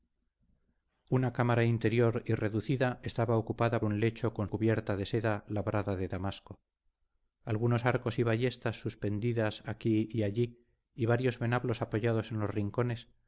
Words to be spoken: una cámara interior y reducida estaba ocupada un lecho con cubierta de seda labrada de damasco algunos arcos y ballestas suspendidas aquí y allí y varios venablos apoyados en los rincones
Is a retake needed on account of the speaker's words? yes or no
no